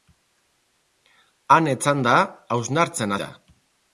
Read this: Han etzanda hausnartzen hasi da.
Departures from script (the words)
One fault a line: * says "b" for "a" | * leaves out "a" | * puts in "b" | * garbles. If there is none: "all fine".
* leaves out "hasi"